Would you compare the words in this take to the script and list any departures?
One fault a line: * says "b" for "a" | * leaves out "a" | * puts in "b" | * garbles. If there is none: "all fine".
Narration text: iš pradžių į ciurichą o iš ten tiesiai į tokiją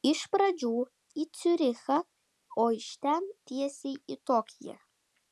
all fine